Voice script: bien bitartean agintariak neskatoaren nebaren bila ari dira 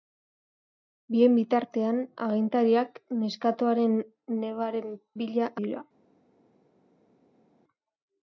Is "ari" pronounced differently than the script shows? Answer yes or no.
yes